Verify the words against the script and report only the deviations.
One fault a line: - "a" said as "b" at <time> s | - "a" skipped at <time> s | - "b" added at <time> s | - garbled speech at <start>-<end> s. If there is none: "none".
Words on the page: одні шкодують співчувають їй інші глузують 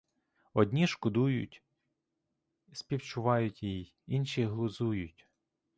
none